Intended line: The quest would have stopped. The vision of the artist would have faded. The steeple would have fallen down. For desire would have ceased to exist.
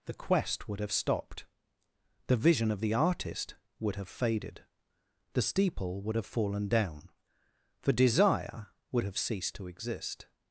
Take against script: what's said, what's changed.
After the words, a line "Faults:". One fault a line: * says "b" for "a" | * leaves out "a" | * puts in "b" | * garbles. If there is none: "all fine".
The quest would have stopped. The vision of the artist would have faded. The steeple would have fallen down. For desire would have ceased to exist.
Faults:
all fine